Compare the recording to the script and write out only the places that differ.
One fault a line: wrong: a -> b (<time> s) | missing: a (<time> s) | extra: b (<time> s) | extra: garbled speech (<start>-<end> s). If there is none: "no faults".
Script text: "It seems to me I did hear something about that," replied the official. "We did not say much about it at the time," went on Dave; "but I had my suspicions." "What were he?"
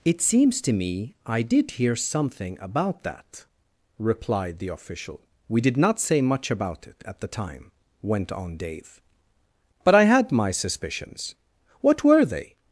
wrong: he -> they (12.2 s)